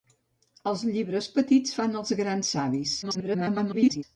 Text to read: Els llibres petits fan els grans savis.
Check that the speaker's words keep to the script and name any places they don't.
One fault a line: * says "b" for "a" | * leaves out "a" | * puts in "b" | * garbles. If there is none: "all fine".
* garbles